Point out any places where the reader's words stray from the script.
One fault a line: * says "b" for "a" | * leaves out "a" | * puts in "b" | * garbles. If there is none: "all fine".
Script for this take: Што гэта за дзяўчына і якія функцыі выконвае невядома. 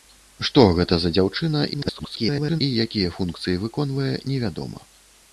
* garbles